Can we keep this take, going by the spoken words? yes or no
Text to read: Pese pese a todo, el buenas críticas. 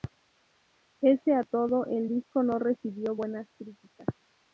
no